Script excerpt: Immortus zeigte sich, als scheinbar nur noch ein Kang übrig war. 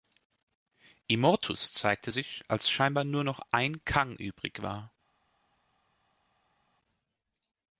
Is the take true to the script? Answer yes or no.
yes